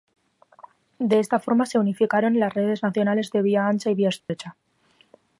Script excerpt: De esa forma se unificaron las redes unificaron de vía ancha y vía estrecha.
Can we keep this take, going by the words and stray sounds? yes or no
no